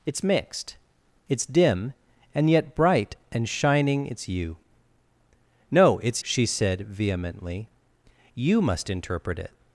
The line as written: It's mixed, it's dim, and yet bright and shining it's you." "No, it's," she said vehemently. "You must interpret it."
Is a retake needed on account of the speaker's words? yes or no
no